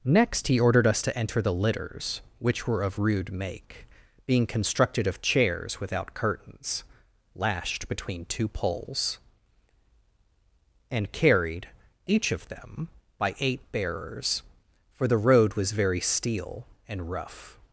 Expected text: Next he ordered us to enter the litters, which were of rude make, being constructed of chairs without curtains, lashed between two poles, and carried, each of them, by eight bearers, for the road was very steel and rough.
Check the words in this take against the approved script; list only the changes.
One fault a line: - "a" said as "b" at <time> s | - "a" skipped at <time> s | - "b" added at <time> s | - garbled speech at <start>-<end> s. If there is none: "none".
none